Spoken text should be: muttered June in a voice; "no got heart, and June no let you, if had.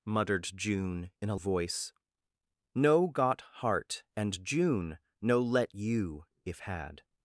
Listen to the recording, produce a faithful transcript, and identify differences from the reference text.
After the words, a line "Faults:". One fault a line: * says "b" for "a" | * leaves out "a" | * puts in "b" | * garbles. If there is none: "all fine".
muttered June in a voice; "no got heart, and June no let you, if had.
Faults:
all fine